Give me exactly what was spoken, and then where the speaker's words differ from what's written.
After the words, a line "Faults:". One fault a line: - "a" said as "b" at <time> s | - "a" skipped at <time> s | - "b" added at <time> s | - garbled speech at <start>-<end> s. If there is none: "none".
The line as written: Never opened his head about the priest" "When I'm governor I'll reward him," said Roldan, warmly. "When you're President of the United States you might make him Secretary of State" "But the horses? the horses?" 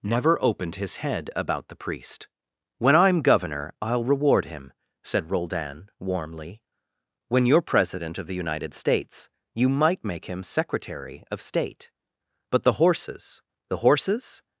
Never opened his head about the priest" "When I'm governor I'll reward him," said Roldan, warmly. "When you're President of the United States you might make him Secretary of State" "But the horses? the horses?"
Faults:
none